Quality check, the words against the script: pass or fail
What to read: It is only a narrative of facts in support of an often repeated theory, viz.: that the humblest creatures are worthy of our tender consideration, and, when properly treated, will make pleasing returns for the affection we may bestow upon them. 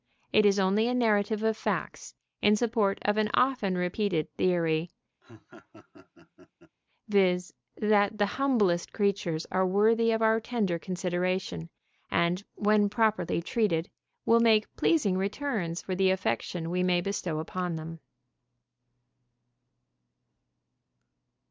pass